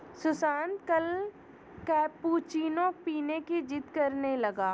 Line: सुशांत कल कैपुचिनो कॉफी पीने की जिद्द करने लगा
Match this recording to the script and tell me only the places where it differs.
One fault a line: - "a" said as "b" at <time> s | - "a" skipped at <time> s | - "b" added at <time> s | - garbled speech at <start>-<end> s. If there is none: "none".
- "कॉफी" skipped at 2.9 s